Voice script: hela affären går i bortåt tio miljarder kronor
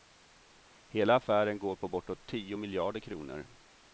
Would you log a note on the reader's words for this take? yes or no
yes